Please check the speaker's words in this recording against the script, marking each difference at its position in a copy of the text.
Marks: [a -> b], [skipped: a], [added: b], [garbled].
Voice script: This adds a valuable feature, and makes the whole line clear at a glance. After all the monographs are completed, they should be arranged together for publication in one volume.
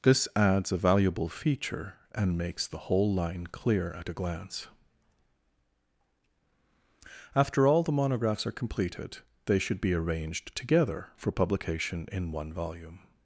This adds a valuable feature, and makes the whole line clear at a glance. After all the monographs are completed, they should be arranged together for publication in one volume.